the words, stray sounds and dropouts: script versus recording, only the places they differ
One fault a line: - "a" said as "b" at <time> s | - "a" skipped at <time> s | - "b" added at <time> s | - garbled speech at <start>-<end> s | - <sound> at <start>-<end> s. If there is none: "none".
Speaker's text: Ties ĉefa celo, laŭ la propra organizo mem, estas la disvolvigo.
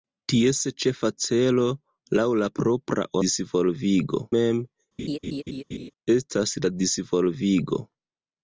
- "organizo" said as "disvolvigo" at 3.3 s
- laugh at 5.0-5.9 s